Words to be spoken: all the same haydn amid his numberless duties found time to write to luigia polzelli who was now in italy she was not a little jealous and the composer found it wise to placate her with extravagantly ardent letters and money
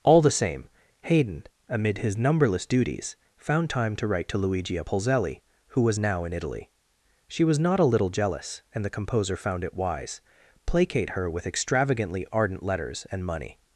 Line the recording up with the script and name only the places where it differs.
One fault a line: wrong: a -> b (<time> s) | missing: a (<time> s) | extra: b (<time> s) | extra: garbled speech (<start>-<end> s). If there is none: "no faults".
missing: to (10.2 s)